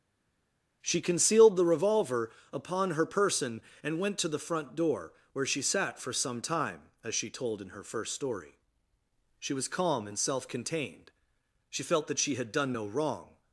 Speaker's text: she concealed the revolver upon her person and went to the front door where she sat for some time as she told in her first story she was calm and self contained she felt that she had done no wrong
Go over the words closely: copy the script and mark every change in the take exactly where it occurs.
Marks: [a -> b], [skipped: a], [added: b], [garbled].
she concealed the revolver upon her person and went to the front door where she sat for some time as she told in her first story she was calm and self contained she felt that she had done no wrong